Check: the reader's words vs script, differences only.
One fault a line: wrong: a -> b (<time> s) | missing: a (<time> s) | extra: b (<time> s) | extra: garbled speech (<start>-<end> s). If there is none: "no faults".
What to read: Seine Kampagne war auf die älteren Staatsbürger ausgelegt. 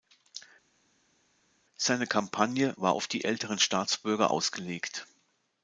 no faults